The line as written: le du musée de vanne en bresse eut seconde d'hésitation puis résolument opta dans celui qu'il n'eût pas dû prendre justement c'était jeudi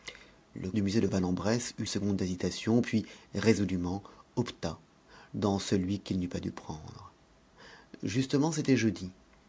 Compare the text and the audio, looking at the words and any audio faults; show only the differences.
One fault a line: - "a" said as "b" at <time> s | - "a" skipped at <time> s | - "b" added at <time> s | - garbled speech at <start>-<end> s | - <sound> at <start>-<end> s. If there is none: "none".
none